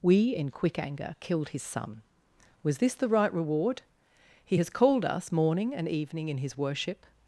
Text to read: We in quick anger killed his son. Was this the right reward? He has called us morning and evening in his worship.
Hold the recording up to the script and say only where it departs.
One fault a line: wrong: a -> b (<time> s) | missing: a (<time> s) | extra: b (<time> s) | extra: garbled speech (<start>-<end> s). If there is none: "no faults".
no faults